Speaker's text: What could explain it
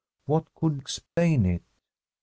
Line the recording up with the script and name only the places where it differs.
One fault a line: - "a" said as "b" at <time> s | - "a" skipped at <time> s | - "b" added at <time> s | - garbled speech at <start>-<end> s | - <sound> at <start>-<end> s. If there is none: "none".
- dropout at 1.1-1.2 s